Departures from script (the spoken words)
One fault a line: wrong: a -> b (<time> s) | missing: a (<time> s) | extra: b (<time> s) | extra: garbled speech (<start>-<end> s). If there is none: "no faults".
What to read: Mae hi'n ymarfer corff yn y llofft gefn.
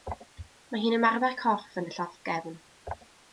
no faults